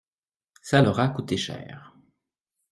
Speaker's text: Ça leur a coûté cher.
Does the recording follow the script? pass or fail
pass